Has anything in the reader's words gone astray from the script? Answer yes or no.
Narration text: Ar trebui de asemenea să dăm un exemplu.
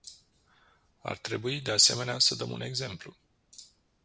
no